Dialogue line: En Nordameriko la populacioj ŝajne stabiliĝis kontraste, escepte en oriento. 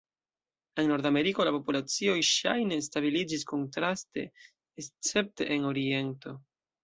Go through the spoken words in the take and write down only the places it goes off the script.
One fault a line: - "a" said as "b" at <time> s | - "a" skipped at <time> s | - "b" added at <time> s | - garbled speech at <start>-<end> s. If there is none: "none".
none